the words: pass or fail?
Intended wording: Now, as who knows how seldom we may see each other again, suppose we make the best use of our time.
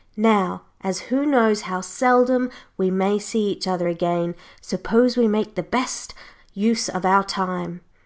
pass